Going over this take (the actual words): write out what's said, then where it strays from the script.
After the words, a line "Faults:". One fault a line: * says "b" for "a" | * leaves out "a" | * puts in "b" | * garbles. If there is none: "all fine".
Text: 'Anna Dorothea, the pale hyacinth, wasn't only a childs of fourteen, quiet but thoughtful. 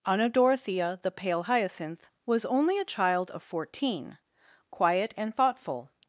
'Anna Dorothea, the pale hyacinth, was only a child of fourteen, quiet and thoughtful.
Faults:
* says "was" for "wasn't"
* says "child" for "childs"
* says "and" for "but"